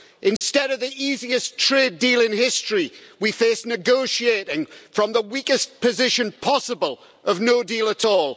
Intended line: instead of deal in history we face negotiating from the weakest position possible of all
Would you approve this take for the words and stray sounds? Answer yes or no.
no